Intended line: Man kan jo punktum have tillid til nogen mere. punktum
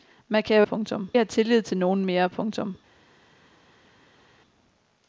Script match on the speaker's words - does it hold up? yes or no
yes